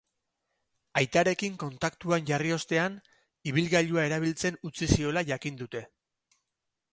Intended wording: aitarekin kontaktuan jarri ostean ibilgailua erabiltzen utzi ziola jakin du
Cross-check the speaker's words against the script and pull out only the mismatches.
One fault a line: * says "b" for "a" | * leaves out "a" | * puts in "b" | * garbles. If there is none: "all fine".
* says "dute" for "du"